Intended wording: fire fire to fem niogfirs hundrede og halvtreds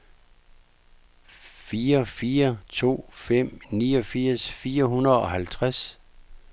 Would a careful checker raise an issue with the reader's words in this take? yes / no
yes